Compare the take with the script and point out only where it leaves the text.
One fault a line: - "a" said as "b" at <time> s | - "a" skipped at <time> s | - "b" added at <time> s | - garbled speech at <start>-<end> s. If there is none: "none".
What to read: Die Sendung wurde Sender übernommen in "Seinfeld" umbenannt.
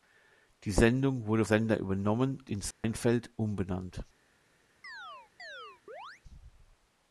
none